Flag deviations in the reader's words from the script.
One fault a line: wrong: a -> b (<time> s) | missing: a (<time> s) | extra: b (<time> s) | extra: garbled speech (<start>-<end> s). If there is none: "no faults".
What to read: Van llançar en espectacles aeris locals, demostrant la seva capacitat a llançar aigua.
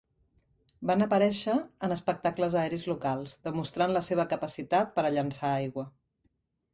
wrong: llançar -> aparèixer (1.0 s)
extra: per (5.0 s)